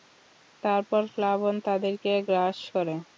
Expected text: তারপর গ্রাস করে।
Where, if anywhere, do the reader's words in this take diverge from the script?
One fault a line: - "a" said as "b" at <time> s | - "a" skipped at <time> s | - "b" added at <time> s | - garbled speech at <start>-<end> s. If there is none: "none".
- "প্লাবন তাদেরকে" added at 1.1 s